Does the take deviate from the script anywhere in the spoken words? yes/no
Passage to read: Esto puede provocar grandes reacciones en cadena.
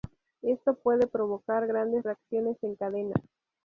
no